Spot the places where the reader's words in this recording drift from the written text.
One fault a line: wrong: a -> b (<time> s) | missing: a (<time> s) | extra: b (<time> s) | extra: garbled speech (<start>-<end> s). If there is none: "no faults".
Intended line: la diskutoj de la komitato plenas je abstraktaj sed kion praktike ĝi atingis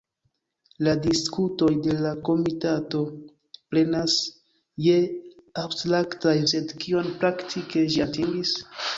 no faults